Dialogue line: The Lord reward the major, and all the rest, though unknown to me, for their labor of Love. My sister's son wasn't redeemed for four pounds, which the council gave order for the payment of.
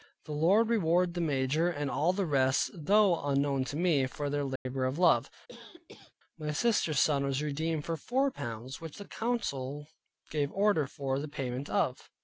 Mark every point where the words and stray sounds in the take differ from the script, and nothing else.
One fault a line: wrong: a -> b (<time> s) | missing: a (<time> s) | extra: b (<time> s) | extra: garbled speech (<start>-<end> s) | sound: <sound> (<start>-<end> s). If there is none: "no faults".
sound: dropout (4.6-4.7 s)
sound: cough (5.5-6.1 s)
wrong: wasn't -> was (7.2 s)